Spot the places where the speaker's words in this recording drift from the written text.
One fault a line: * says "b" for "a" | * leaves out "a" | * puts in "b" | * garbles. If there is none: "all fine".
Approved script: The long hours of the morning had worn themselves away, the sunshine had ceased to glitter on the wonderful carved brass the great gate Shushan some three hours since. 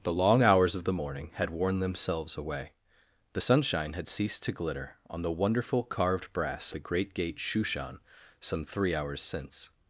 all fine